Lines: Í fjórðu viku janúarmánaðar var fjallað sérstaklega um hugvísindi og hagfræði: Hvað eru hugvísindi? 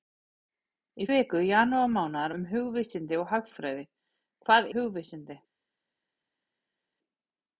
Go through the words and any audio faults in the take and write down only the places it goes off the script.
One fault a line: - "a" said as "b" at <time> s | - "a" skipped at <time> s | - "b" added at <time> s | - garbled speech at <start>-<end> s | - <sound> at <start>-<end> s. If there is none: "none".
- "fjórðu" skipped at 1.1 s
- "var fjallað sérstaklega" skipped at 2.3 s
- "eru" skipped at 4.7 s